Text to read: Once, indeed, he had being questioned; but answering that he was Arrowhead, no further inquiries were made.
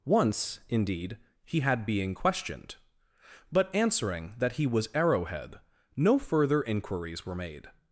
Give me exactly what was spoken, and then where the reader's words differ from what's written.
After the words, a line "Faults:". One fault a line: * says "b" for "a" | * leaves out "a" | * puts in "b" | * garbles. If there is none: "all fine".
Once, indeed, he had being questioned; but answering that he was Arrowhead, no further inquiries were made.
Faults:
all fine